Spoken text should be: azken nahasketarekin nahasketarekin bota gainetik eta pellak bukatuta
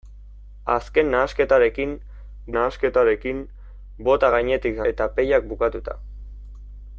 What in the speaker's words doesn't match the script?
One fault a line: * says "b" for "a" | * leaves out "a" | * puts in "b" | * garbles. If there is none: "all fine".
all fine